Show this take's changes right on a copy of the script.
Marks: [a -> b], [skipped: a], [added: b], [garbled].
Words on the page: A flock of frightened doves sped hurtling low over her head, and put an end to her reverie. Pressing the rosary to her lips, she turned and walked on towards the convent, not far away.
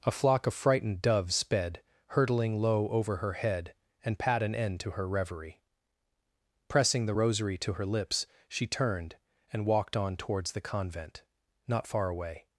A flock of frightened doves sped hurtling low over her head, and [put -> pat] an end to her reverie. Pressing the rosary to her lips, she turned and walked on towards the convent, not far away.